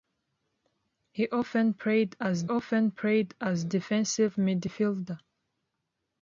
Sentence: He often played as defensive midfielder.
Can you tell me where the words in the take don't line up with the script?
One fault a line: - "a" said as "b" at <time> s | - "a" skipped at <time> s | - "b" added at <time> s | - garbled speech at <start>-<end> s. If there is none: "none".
- "often played as" added at 2.5 s